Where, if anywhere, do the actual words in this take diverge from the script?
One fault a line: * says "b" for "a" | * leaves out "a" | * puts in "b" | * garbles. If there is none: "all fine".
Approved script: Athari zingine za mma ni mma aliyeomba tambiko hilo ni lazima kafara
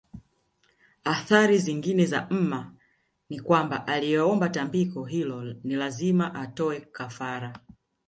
* says "kwamba" for "mma"
* puts in "atoe"